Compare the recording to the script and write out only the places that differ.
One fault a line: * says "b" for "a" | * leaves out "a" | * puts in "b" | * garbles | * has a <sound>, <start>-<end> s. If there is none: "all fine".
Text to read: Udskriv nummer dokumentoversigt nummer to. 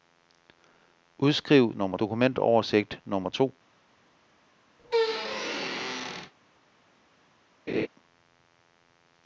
* has a squeak, 4.8-6.3 s
* has a laugh, 7.7-7.9 s